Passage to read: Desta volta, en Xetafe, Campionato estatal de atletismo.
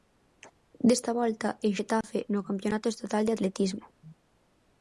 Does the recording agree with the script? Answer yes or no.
no